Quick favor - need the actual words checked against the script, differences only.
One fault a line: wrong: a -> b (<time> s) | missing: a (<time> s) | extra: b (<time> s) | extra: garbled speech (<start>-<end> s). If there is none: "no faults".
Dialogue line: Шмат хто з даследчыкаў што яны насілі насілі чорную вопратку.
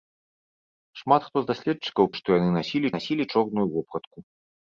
no faults